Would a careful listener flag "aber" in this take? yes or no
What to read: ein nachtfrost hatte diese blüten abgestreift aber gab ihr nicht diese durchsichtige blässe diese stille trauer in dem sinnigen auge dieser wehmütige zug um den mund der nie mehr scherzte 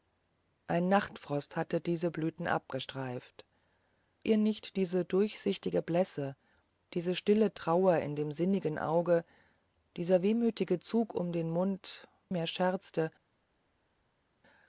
yes